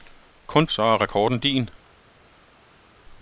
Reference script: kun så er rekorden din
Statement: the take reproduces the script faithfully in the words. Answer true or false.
true